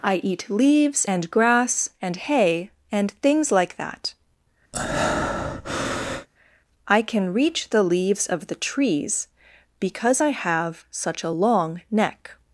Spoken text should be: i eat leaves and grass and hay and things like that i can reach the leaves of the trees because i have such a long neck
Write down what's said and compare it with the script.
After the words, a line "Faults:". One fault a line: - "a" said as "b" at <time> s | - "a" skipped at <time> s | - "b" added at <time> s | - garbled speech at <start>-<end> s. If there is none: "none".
i eat leaves and grass and hay and things like that i can reach the leaves of the trees because i have such a long neck
Faults:
none